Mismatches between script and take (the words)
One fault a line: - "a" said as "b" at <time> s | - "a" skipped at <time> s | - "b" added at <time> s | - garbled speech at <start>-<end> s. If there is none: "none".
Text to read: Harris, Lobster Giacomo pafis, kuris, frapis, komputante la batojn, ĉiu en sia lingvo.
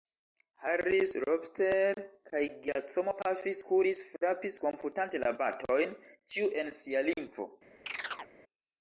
- "kaj" added at 2.3 s